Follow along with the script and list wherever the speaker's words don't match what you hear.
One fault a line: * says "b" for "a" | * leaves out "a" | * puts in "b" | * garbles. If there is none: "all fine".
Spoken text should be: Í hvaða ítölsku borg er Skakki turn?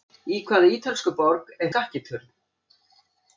all fine